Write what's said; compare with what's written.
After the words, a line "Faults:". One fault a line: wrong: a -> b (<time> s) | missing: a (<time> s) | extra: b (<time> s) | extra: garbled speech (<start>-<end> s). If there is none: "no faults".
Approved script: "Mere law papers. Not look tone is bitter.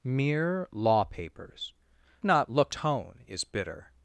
"Mere law papers. Not look tone is bitter.
Faults:
no faults